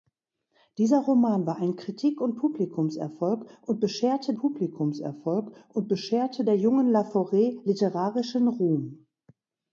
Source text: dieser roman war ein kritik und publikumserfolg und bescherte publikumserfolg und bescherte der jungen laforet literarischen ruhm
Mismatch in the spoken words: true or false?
false